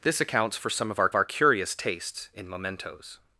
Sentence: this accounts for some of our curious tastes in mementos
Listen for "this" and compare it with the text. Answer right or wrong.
right